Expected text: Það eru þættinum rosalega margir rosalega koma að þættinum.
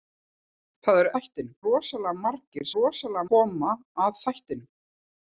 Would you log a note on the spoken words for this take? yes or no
no